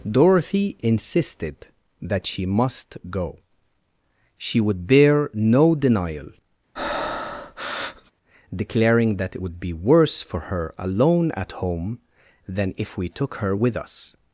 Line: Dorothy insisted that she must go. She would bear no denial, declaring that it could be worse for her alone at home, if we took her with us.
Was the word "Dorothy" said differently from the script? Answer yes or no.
no